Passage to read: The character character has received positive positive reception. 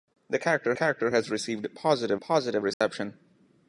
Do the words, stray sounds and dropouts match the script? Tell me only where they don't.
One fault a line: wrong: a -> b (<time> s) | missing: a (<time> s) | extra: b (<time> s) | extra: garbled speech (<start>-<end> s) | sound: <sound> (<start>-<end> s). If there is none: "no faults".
sound: dropout (2.7-2.8 s)